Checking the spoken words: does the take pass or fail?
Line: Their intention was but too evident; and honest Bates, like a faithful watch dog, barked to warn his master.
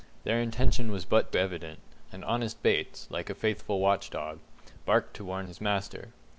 fail